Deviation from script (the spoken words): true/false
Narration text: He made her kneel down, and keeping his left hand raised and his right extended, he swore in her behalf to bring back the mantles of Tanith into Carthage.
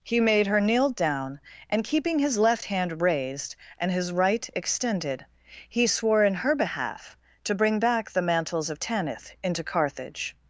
false